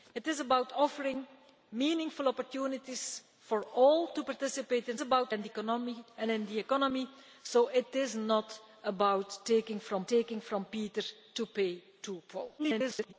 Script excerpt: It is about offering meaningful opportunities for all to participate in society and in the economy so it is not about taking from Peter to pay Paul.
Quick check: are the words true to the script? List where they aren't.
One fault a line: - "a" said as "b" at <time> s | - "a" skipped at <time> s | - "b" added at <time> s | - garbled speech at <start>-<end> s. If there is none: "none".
- "society" said as "about" at 5.0 s
- "taking from" added at 10.1 s
- garbled speech at 12.6-13.1 s